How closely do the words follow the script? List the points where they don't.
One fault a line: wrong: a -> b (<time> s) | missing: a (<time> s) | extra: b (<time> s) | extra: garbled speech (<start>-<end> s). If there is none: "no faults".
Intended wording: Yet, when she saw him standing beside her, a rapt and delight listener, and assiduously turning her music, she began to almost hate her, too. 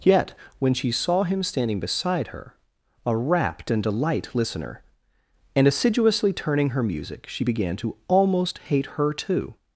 no faults